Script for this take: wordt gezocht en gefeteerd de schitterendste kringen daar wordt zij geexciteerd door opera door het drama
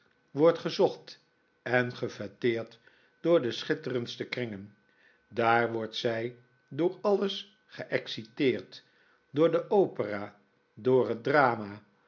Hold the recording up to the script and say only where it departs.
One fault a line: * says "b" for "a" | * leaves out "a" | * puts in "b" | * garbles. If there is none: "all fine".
* puts in "door"
* puts in "door alles"
* puts in "de"